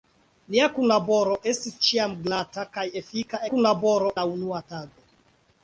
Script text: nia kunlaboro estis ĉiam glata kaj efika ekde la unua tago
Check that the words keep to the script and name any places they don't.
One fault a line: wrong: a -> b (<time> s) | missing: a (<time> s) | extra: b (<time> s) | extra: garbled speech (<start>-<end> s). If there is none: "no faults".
wrong: ekde -> kunlaboro (3.5 s)